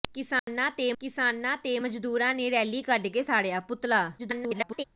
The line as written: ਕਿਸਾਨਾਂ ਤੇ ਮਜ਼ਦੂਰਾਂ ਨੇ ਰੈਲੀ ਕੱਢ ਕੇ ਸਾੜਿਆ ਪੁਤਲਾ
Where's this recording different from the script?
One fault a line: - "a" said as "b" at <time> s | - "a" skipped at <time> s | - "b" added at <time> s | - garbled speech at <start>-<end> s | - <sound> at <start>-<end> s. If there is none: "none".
- dropout at 0.4-0.5 s
- "ਕਿਸਾਨਾਂ ਤੇ" added at 1.0 s
- garbled speech at 4.2-4.8 s